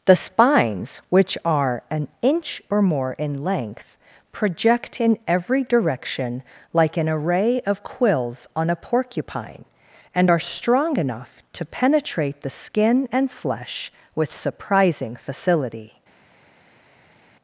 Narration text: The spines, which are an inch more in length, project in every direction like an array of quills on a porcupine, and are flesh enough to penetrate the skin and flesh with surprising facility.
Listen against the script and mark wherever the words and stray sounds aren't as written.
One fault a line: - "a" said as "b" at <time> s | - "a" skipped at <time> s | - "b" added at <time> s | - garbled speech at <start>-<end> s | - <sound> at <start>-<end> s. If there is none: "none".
- "or" added at 2.7 s
- "flesh" said as "strong" at 10.4 s